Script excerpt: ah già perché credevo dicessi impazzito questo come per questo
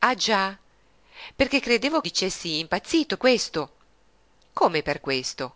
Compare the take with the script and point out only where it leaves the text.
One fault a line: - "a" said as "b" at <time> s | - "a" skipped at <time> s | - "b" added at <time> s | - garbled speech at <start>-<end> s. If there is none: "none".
none